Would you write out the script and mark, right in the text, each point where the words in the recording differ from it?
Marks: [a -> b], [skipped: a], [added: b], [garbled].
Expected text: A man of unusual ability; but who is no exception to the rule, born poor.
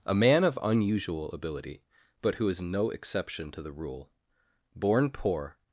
A man of unusual ability; but who is no exception to the rule, born poor.